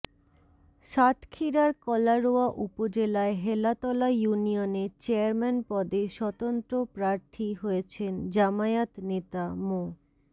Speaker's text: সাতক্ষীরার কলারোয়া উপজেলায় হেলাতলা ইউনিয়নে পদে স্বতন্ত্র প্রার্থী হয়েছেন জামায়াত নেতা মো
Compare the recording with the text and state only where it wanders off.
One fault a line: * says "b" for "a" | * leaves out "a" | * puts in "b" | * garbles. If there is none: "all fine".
* puts in "চেয়ারম্যান"